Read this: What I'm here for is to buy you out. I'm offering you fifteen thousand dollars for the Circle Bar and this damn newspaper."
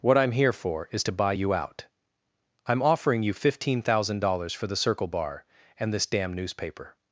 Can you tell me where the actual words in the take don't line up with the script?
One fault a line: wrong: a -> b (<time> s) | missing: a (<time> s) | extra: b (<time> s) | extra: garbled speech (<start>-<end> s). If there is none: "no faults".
no faults